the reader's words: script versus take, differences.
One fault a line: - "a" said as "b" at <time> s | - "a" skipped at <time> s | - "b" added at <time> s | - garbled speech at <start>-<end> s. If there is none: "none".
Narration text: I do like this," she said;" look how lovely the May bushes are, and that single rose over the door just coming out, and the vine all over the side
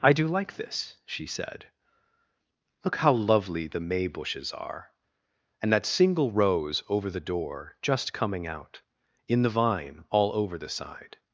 - "and" said as "in" at 9.3 s